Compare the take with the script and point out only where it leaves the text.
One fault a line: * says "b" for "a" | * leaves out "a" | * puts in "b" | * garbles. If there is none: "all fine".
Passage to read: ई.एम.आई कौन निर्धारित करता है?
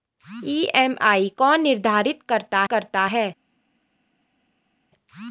* puts in "करता"